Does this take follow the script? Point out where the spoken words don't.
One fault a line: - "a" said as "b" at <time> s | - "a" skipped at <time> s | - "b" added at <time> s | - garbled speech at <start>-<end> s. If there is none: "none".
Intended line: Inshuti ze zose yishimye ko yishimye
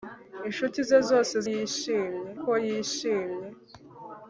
none